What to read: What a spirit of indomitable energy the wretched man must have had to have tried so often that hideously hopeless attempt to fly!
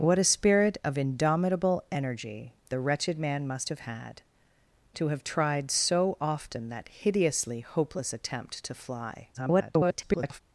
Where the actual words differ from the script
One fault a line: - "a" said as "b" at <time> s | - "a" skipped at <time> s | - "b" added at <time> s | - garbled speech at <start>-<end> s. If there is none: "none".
- garbled speech at 9.3-10.4 s